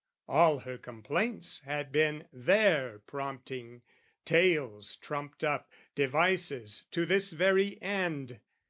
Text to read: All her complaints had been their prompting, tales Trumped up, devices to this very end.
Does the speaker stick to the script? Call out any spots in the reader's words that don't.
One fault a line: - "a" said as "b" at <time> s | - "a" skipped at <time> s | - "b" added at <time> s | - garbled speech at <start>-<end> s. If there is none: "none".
none